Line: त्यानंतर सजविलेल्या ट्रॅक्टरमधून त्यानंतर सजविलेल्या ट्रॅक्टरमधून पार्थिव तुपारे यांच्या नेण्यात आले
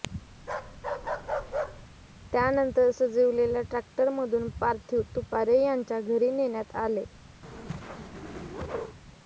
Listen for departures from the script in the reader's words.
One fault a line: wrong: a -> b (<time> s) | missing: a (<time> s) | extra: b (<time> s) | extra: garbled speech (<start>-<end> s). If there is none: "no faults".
missing: त्यानंतर सजविलेल्या ट्रॅक्टरमधून (4.5 s)
extra: घरी (6.0 s)